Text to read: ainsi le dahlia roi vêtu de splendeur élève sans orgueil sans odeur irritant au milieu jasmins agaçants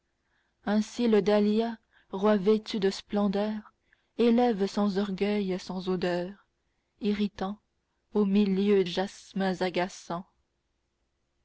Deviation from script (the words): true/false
false